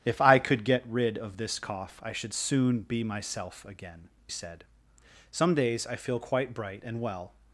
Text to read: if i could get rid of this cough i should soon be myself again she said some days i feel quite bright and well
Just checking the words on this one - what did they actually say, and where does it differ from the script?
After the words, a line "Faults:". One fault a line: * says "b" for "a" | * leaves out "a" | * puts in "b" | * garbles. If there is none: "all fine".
if i could get rid of this cough i should soon be myself again said some days i feel quite bright and well
Faults:
* leaves out "she"